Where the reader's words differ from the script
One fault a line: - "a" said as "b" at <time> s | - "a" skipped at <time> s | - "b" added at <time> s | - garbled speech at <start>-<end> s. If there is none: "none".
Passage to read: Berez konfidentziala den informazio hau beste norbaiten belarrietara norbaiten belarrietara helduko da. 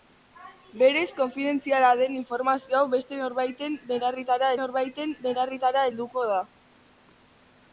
none